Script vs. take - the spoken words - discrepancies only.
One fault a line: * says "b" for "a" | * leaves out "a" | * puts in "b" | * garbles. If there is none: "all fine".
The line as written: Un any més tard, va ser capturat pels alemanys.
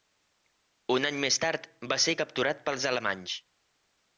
all fine